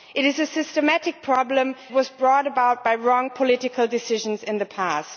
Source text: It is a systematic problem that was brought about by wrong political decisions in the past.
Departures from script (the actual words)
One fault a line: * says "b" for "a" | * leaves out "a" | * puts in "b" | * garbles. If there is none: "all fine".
* leaves out "that"